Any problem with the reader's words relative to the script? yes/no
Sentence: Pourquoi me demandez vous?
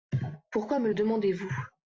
no